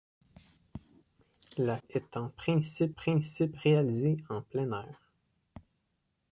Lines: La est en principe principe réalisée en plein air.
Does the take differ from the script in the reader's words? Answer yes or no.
no